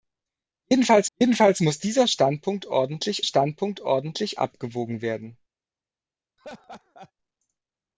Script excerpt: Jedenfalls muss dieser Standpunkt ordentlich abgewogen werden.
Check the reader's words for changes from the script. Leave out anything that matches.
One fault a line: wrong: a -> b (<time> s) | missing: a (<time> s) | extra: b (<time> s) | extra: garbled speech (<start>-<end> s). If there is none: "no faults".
extra: jedenfalls (1.2 s)
extra: Standpunkt ordentlich (3.2 s)